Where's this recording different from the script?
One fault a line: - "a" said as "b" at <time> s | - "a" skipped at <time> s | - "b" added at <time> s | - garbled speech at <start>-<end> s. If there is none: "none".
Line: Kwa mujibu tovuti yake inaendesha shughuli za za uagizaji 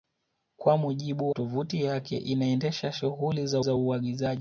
none